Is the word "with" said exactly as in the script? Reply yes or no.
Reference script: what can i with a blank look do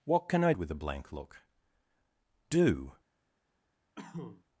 yes